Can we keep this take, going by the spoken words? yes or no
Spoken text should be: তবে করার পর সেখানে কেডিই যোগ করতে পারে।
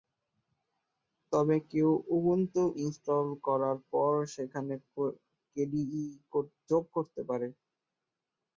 no